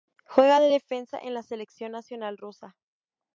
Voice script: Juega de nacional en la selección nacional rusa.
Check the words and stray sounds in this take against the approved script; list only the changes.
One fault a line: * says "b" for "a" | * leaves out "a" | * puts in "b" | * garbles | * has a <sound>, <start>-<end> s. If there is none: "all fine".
* says "defensa" for "nacional"